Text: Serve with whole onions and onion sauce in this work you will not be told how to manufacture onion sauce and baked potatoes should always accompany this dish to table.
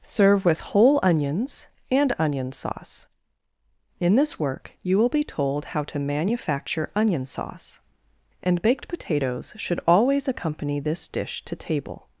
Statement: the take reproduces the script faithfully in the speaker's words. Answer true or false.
false